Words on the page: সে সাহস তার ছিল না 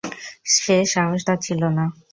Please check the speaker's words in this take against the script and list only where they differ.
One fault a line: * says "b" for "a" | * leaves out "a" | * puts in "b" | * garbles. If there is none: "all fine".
all fine